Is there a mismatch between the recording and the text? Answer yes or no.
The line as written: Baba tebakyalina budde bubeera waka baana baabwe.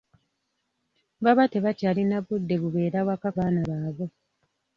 no